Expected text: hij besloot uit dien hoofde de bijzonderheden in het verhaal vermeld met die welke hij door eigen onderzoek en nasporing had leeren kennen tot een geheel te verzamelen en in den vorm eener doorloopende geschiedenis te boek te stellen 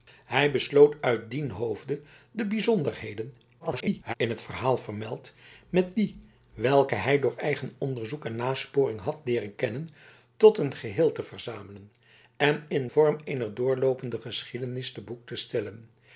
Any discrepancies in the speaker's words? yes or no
yes